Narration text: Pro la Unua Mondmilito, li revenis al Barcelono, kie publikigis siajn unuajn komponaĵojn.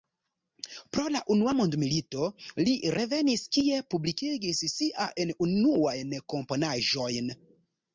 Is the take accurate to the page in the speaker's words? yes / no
no